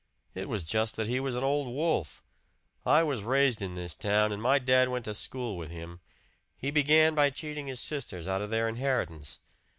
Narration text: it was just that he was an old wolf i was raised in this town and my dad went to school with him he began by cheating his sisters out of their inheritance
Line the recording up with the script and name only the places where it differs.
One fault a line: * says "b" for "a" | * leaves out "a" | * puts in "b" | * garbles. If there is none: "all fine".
all fine